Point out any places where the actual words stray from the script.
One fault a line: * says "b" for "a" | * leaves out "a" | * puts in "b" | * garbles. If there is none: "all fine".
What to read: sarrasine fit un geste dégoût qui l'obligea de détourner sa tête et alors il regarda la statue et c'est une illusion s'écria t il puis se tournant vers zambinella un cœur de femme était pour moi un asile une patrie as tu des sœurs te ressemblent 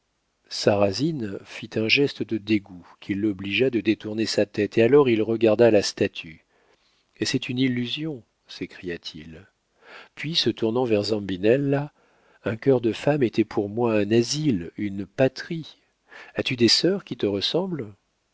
* puts in "de"
* puts in "qui"